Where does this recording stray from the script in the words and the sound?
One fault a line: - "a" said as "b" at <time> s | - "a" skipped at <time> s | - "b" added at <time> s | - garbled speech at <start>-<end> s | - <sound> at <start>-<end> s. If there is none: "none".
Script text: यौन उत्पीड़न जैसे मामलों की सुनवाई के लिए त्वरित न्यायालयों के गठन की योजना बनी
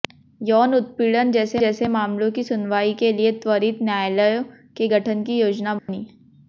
- "जैसे" added at 1.6 s
- dropout at 5.8-5.9 s